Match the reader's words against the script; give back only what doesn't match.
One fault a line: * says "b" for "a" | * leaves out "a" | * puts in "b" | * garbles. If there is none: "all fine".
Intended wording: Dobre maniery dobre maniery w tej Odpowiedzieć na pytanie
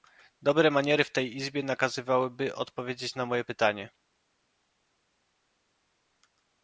* says "w tej Izbie nakazywałyby" for "dobre maniery w tej"
* puts in "moje"